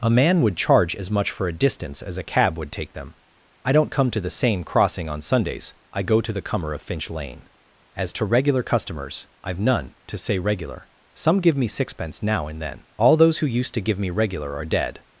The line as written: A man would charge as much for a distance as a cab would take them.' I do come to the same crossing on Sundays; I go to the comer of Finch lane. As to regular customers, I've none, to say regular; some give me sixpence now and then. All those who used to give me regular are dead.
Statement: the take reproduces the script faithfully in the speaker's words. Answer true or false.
false